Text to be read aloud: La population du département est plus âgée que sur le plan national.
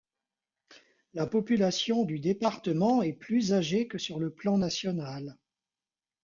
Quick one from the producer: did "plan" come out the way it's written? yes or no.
yes